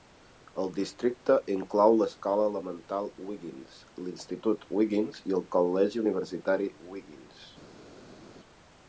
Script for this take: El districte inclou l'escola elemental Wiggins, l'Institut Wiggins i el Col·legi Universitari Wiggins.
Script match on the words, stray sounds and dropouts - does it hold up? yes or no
yes